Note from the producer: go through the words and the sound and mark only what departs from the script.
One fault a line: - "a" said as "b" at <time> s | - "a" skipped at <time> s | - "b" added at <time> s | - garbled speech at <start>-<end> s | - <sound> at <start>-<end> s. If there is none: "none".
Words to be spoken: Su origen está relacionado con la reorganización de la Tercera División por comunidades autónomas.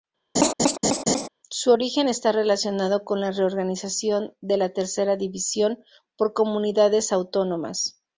- laugh at 0.4-1.3 s